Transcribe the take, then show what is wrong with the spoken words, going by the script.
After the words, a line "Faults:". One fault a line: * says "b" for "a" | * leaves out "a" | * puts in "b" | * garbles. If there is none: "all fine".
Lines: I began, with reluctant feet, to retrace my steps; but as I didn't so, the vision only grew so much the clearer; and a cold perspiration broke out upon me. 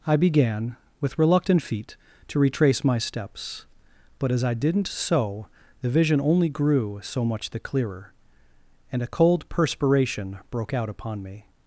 I began, with reluctant feet, to retrace my steps; but as I didn't so, the vision only grew so much the clearer; and a cold perspiration broke out upon me.
Faults:
all fine